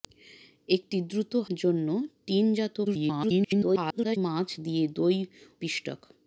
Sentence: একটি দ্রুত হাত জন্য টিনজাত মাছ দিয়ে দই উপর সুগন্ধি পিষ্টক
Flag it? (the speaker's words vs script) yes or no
yes